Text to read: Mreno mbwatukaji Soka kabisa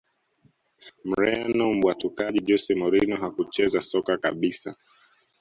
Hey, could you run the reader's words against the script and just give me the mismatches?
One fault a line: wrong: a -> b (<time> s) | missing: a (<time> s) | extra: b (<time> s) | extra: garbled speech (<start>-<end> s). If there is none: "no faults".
extra: Jose Mourinho hakucheza (2.5 s)